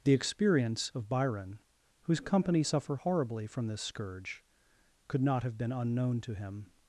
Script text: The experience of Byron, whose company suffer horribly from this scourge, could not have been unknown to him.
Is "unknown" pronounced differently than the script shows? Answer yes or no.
no